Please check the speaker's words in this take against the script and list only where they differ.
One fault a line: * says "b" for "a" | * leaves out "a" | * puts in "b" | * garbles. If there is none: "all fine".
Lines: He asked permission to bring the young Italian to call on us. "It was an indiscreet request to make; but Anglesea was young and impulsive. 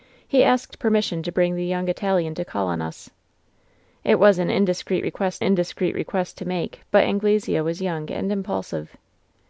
* puts in "indiscreet request"